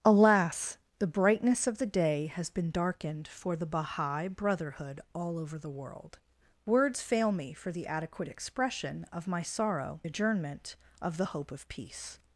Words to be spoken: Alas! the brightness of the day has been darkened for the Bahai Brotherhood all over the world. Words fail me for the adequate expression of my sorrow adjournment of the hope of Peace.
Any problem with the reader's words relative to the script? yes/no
no